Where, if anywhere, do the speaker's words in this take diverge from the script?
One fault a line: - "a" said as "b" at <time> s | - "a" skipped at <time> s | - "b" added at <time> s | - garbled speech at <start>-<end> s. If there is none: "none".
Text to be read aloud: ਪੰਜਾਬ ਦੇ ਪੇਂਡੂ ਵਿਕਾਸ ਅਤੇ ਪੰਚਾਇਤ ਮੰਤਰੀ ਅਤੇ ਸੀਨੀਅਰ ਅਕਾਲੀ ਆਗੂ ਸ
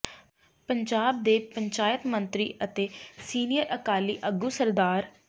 - "ਪੇਂਡੂ ਵਿਕਾਸ ਅਤੇ" skipped at 1.4 s